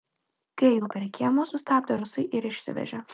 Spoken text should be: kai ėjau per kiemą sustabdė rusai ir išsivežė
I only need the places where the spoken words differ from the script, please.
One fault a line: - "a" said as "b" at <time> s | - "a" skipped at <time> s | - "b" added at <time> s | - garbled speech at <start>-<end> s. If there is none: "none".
none